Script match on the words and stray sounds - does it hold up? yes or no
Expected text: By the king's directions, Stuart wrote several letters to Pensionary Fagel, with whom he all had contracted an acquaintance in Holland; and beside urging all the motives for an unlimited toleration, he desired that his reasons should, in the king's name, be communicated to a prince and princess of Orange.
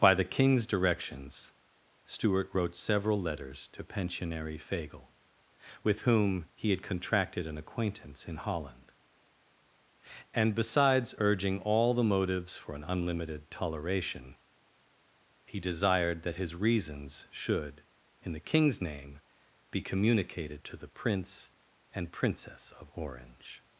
no